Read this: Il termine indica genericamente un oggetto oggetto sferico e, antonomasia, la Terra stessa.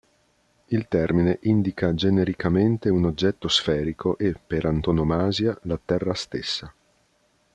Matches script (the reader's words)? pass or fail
fail